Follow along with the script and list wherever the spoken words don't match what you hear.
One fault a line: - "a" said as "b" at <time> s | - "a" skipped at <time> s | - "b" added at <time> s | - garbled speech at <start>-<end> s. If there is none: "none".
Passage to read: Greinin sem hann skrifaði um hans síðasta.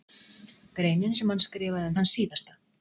none